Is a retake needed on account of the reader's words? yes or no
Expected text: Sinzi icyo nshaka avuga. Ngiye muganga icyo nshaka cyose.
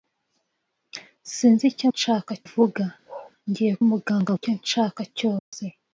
no